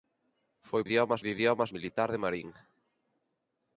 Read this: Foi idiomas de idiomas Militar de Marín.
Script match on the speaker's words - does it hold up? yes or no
yes